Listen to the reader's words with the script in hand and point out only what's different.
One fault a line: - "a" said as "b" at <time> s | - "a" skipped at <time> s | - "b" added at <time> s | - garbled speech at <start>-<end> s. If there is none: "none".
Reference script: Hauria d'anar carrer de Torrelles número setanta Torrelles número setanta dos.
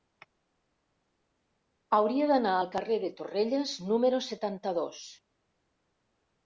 - "al" added at 2.6 s
- "Torrelles número setanta" skipped at 4.8 s